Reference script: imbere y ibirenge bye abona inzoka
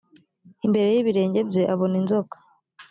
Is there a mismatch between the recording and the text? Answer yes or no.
no